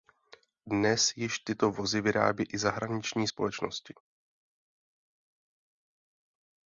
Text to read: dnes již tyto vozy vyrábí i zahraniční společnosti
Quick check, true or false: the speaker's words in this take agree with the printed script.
true